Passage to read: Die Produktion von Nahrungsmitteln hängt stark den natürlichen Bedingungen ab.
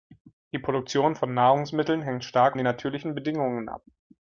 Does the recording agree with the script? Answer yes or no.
yes